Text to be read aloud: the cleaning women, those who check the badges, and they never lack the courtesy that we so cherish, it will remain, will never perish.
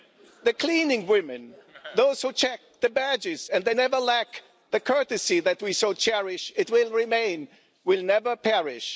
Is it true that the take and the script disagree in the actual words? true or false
false